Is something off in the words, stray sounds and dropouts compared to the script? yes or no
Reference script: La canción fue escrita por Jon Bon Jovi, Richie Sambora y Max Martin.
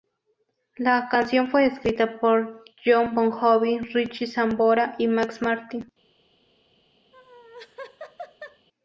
yes